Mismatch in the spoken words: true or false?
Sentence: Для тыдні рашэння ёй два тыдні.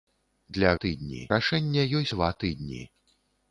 false